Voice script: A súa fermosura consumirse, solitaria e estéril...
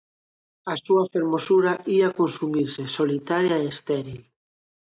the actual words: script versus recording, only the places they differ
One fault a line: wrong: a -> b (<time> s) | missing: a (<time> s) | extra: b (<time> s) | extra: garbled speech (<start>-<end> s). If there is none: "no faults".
extra: ía (1.9 s)